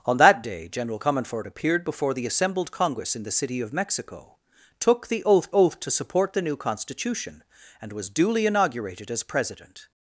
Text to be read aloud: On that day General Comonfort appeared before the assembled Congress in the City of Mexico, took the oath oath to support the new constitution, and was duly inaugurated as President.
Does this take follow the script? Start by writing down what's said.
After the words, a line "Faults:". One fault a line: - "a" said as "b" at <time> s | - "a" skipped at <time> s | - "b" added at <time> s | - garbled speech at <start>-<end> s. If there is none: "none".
On that day General Comonfort appeared before the assembled Congress in the City of Mexico, took the oath oath to support the new constitution, and was duly inaugurated as President.
Faults:
none